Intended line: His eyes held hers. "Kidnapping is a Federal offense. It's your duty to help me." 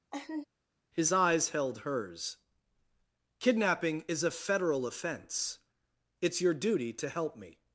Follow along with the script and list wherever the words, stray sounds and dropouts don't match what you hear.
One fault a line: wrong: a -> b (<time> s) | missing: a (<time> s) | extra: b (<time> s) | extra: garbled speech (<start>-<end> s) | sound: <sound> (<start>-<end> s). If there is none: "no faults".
sound: laugh (0.1-0.5 s)